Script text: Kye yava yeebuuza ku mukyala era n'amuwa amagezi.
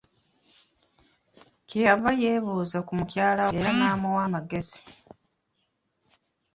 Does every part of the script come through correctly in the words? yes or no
yes